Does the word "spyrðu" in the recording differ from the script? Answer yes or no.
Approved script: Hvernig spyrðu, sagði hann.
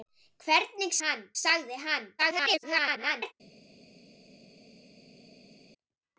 yes